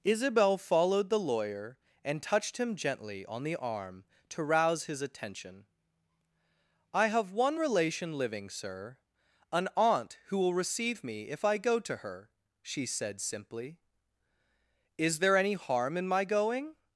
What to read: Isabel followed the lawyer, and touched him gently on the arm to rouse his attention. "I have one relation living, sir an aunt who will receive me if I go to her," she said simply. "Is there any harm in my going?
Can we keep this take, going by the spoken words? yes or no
yes